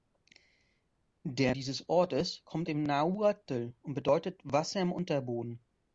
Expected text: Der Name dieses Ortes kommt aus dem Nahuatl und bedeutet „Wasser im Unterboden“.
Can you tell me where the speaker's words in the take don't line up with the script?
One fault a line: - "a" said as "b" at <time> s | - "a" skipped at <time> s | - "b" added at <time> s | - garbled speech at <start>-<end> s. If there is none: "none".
- "Name" skipped at 1.5 s
- "aus" skipped at 2.7 s